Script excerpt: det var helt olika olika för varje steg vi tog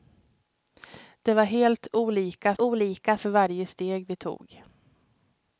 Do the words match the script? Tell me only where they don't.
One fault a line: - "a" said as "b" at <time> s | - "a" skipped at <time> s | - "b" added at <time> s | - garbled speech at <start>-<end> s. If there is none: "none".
none